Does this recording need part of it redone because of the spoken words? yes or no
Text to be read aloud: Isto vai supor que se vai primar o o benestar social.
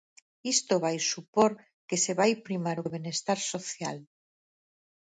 no